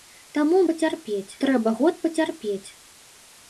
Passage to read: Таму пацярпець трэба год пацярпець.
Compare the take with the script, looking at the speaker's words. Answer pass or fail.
pass